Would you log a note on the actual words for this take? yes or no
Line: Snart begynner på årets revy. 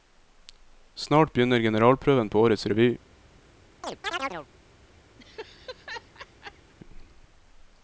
yes